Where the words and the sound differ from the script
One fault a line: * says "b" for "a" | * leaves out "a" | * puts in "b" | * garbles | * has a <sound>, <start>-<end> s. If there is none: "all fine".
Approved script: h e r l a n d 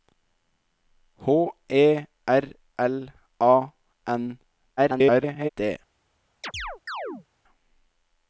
* garbles
* has a chirp, 6.4-7.3 s